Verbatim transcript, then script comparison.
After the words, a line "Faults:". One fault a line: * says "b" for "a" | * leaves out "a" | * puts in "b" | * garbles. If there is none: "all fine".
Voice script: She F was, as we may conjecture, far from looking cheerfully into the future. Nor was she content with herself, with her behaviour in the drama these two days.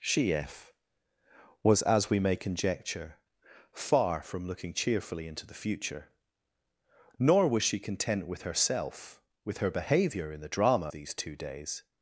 She F was, as we may conjecture, far from looking cheerfully into the future. Nor was she content with herself, with her behaviour in the drama these two days.
Faults:
all fine